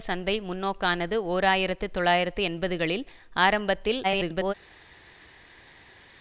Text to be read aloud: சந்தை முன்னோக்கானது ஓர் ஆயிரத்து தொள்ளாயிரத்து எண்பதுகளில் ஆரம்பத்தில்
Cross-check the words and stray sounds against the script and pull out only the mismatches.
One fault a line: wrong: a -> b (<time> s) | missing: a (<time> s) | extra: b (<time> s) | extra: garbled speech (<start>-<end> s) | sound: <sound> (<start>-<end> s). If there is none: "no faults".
extra: garbled speech (4.0-4.5 s)